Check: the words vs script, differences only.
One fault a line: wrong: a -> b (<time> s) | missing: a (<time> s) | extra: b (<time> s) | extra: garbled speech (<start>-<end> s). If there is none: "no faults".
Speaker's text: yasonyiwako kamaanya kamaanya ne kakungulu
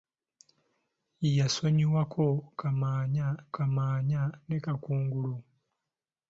no faults